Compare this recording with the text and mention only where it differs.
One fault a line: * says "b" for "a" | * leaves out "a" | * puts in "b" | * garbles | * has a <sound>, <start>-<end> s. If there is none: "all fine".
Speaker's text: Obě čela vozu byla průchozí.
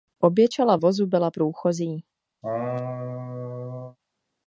* has a laugh, 2.4-4.0 s